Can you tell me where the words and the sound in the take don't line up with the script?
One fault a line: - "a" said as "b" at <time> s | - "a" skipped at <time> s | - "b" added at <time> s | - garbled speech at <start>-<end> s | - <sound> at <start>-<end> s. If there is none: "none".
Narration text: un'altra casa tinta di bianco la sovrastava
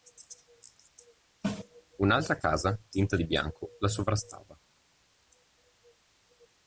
none